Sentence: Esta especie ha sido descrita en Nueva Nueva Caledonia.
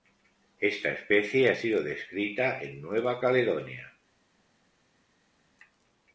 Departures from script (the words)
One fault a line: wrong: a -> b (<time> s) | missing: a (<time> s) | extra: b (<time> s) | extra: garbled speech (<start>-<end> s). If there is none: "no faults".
missing: Nueva (3.2 s)